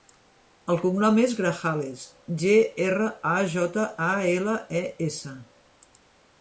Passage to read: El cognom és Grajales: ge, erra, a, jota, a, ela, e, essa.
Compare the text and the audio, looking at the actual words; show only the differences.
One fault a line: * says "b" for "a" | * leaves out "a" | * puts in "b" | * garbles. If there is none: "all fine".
all fine